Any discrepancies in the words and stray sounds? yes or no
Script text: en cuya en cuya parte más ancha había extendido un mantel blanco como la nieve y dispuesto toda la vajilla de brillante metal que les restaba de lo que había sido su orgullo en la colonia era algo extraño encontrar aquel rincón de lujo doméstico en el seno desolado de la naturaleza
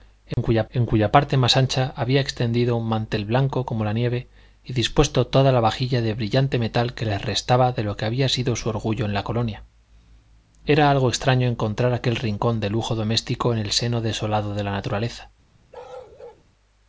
yes